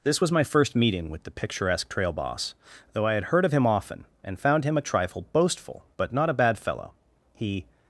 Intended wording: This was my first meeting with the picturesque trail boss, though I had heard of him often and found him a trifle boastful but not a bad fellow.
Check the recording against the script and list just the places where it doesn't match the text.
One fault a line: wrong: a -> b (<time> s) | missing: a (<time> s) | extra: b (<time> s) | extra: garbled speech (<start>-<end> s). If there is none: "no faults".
extra: He (7.3 s)